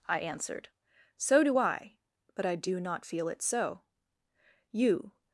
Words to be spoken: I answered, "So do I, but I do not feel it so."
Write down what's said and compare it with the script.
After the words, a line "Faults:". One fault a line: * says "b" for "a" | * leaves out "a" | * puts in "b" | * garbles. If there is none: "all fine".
I answered, "So do I, but I do not feel it so." You
Faults:
* puts in "You"